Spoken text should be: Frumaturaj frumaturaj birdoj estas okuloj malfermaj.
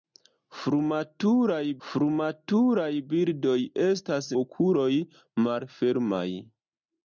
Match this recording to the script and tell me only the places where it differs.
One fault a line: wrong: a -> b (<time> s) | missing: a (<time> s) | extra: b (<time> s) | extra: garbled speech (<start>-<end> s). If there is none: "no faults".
no faults